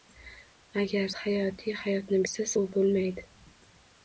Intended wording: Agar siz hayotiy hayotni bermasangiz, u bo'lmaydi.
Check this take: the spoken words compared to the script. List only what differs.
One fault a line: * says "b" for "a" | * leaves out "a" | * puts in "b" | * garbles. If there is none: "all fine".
* leaves out "siz"
* says "siz" for "bermasangiz"